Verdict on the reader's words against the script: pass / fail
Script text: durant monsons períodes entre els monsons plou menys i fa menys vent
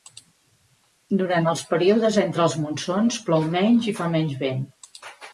fail